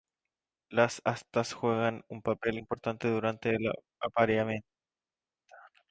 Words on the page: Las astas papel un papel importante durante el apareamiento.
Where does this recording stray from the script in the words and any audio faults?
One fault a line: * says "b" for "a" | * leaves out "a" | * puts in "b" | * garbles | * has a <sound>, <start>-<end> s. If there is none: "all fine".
* says "juegan" for "papel"